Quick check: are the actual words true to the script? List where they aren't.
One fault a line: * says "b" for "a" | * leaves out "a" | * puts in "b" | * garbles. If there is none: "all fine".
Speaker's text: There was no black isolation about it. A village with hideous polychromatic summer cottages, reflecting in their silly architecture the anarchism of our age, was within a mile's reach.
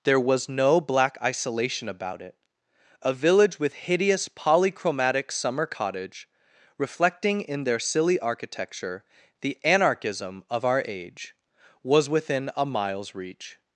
* says "cottage" for "cottages"